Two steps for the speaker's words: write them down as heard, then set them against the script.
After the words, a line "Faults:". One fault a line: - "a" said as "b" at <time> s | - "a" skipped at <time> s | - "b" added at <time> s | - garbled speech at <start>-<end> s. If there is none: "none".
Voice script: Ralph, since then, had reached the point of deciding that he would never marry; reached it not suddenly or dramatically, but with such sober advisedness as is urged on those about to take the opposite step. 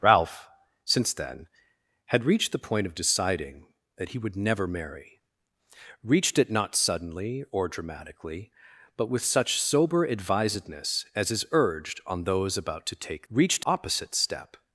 Ralph, since then, had reached the point of deciding that he would never marry; reached it not suddenly or dramatically, but with such sober advisedness as is urged on those about to take reached opposite step.
Faults:
- "the" said as "reached" at 13.3 s